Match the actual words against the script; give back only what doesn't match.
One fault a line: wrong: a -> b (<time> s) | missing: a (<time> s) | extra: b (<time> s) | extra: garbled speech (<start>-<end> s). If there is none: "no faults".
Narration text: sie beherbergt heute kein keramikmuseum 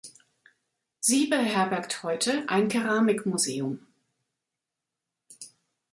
wrong: kein -> ein (2.5 s)